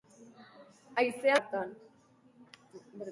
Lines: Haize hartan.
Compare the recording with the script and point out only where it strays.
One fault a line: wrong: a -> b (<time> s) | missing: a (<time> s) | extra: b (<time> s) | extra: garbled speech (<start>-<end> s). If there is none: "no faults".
no faults